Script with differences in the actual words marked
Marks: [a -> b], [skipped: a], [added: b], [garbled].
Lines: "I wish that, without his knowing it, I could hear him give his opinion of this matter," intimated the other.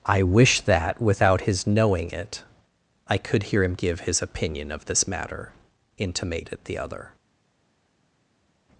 "I wish that, without his knowing it, I could hear him give his opinion of this matter," intimated the other.